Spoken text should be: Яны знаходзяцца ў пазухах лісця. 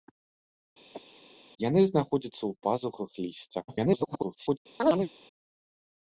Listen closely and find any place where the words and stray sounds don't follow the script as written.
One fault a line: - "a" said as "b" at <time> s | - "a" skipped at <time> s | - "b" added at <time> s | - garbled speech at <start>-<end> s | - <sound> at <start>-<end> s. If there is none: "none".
- cough at 0.9-1.3 s
- garbled speech at 3.7-4.6 s
- chirp at 4.8-5.1 s